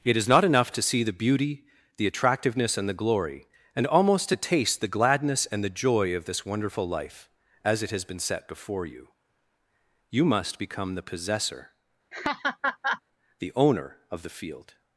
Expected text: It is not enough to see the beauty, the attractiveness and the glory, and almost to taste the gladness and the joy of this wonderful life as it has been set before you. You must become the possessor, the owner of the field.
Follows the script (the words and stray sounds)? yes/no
no